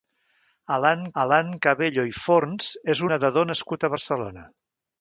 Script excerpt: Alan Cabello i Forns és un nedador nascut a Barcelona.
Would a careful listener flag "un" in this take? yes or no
yes